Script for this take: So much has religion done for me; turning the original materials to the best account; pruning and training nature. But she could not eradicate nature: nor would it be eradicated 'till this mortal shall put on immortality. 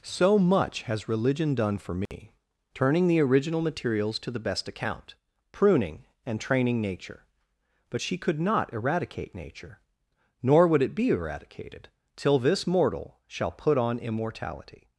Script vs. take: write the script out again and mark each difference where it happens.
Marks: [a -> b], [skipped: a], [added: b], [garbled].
So much has religion done for me; turning the original materials to the best account; pruning and training nature. But she could not eradicate nature: nor would it be eradicated 'till this mortal shall put on immortality.